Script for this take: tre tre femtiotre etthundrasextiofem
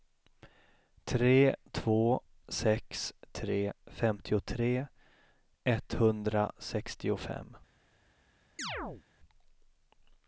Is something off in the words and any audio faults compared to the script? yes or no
yes